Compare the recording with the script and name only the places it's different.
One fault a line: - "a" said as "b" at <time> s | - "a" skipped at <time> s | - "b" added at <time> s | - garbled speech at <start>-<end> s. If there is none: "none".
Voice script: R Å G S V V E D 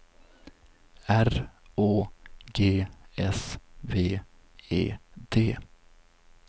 - "V" skipped at 4.2 s